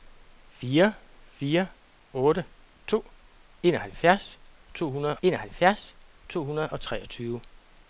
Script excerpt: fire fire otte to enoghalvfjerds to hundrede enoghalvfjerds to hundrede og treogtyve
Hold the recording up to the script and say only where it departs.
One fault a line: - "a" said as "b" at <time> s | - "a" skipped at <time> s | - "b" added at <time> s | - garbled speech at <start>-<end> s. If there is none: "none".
none